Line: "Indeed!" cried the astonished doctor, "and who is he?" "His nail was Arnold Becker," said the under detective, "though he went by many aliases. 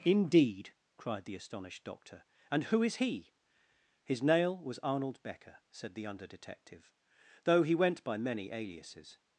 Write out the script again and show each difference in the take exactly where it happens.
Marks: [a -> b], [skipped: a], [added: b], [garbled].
"Indeed!" cried the astonished doctor, "and who is he?" "His nail was Arnold Becker," said the under detective, "though he went by many aliases.